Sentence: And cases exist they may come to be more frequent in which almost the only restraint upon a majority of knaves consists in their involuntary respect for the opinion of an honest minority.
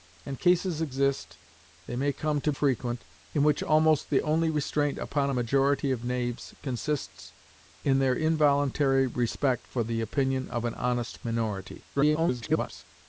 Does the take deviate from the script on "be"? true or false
true